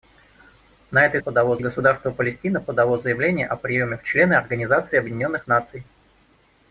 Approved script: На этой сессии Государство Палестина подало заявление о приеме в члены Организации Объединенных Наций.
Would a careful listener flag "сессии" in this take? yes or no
yes